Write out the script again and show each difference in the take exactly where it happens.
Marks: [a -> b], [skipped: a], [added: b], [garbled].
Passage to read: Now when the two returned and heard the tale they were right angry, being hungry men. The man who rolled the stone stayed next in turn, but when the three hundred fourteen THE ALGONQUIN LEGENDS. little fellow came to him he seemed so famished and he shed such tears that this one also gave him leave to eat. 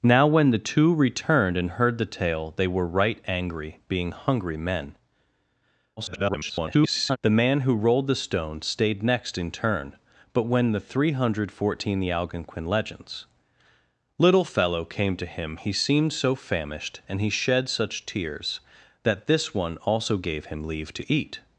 Now when the two returned and heard the tale they were right angry, being hungry men. [garbled] The man who rolled the stone stayed next in turn, but when the three hundred fourteen THE ALGONQUIN LEGENDS. little fellow came to him he seemed so famished and he shed such tears that this one also gave him leave to eat.